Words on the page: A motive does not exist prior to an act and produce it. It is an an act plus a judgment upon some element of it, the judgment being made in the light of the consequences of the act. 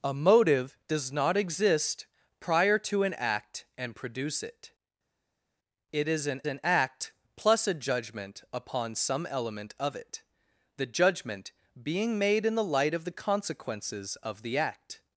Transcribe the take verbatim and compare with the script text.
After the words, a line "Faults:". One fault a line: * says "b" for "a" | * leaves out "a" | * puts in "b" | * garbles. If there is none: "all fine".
A motive does not exist prior to an act and produce it. It is an an act plus a judgment upon some element of it, the judgment being made in the light of the consequences of the act.
Faults:
all fine